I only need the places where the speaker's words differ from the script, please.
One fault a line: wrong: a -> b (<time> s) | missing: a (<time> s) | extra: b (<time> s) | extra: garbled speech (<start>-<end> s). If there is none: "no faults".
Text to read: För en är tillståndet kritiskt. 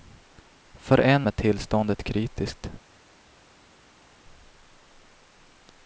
no faults